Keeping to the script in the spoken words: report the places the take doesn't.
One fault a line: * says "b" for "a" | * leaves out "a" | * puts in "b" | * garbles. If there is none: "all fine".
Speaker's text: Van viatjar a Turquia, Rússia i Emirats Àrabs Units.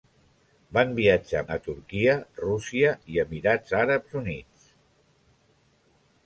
all fine